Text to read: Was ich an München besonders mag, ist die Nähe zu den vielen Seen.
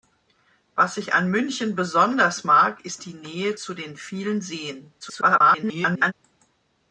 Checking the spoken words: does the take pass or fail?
fail